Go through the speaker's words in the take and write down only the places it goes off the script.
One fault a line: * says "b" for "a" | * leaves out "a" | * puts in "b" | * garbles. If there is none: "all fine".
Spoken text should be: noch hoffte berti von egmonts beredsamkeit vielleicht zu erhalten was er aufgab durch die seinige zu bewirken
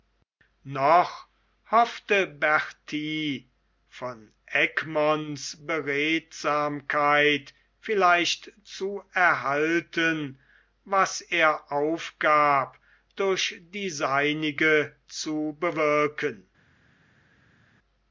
all fine